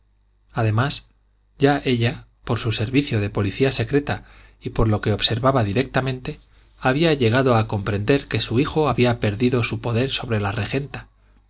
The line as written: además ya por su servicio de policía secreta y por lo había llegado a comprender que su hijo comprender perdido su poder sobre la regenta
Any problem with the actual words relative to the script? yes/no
yes